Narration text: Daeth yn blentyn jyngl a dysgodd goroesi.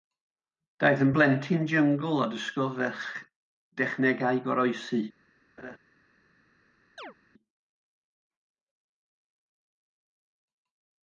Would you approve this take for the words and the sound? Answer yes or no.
no